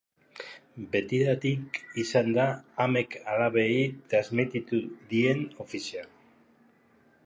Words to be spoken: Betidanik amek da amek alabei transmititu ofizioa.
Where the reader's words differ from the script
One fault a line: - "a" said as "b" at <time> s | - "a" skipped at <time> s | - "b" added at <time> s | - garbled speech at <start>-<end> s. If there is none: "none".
- "amek" said as "izan" at 2.0 s
- "dien" added at 5.1 s